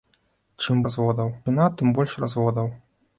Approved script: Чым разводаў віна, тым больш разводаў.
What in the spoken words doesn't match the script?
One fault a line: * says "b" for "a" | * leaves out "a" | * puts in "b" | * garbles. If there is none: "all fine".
all fine